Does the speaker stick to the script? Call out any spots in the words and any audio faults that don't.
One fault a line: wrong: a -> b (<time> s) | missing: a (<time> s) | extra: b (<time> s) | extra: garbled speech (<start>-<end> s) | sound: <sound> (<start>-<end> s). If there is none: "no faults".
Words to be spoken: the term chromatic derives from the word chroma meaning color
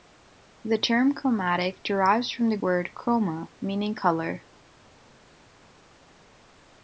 no faults